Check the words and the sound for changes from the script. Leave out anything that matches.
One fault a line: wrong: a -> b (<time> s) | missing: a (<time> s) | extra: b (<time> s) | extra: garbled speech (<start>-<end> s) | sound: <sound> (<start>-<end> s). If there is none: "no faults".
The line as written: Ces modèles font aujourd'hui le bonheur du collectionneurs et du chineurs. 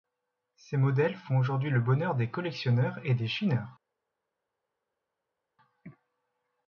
wrong: du -> des (2.1 s)
wrong: du -> des (3.1 s)